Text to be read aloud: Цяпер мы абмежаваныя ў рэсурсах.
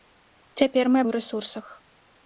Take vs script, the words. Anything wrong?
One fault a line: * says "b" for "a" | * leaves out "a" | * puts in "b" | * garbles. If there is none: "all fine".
* leaves out "абмежаваныя"